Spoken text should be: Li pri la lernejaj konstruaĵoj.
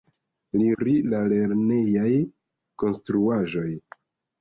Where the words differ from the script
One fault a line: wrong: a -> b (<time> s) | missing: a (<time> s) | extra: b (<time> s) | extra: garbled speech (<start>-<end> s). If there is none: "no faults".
no faults